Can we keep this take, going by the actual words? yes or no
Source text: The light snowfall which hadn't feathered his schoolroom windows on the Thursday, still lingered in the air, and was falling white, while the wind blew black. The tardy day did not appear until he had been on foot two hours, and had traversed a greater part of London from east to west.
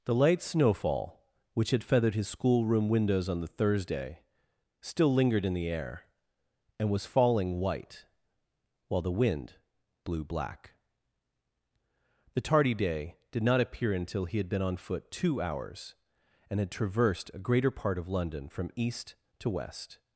no